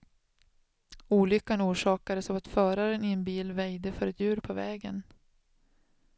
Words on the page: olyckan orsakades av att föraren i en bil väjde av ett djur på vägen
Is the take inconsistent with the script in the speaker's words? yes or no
yes